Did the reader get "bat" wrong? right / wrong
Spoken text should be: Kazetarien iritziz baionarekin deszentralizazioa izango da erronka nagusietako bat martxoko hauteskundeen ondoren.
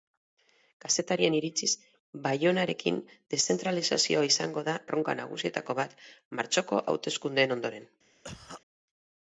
right